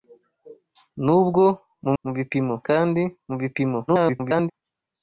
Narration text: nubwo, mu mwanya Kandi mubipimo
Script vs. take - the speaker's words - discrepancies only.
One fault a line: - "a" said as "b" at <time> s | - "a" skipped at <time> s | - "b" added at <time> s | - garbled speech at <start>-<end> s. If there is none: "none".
- "mwanya" said as "mubipimo" at 2.0 s
- garbled speech at 3.9-4.5 s